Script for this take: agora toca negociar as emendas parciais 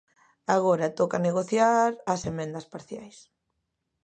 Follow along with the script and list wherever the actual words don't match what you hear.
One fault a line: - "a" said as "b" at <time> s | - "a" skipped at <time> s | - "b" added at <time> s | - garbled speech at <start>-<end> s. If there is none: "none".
none